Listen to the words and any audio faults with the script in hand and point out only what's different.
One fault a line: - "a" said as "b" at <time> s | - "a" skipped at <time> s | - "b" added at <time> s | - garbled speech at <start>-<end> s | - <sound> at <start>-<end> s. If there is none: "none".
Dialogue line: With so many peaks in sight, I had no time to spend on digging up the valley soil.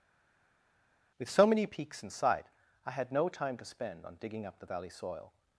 none